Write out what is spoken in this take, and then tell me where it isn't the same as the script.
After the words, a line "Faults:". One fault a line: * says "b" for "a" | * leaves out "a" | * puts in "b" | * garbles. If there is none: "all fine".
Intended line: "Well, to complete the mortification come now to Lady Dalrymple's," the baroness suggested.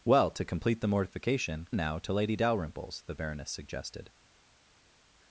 "Well, to complete the mortification now to Lady Dalrymple's," the baroness suggested.
Faults:
* leaves out "come"